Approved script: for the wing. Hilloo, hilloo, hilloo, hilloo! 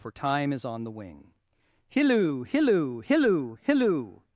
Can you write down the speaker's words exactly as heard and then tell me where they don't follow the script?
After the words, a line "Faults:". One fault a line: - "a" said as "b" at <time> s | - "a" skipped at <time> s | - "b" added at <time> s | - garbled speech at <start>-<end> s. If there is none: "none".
for time is on the wing. Hilloo, hilloo, hilloo, hilloo!
Faults:
- "time is on" added at 0.1 s